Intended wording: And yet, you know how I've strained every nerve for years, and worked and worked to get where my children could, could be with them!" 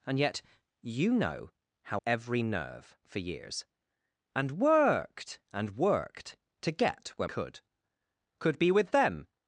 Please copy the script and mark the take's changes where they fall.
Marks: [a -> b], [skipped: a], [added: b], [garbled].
And yet, you know how [skipped: I've strained] every nerve for years, and worked and worked to get where [skipped: my children] could, could be with them!"